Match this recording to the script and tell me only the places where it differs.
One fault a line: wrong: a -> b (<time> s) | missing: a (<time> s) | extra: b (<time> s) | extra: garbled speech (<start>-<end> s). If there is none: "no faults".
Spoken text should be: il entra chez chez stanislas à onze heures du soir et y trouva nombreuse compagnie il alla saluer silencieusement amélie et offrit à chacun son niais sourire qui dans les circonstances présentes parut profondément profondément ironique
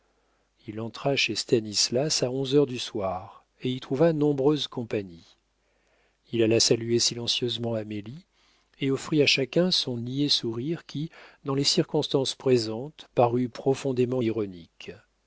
missing: chez (1.4 s)
missing: profondément (14.2 s)